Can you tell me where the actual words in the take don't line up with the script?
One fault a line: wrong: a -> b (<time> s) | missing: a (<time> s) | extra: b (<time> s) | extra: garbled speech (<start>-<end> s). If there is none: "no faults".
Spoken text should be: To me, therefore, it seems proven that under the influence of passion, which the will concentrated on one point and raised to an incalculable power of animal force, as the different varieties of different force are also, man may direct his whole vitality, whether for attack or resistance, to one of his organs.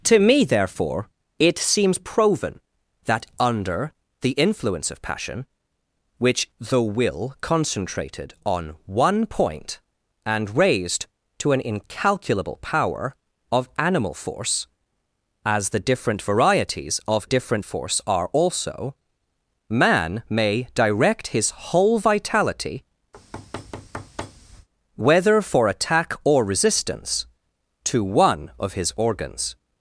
no faults